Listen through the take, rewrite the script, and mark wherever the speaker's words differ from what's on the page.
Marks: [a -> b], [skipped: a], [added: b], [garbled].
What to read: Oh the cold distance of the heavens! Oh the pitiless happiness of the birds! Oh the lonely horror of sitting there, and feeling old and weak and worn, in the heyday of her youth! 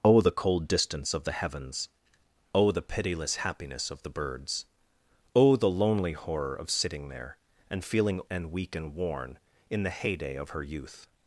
Oh the cold distance of the heavens! Oh the pitiless happiness of the birds! Oh the lonely horror of sitting there, and feeling [skipped: old] and weak and worn, in the heyday of her youth!